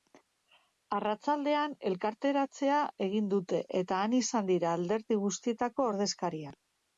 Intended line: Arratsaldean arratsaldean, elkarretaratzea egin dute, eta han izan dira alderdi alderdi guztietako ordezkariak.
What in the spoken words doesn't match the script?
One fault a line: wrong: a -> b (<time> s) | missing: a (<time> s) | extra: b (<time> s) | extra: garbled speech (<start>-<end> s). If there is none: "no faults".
missing: arratsaldean (1.8 s)
missing: alderdi (5.2 s)